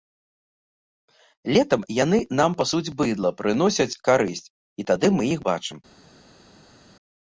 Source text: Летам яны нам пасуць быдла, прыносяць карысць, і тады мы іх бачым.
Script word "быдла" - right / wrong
right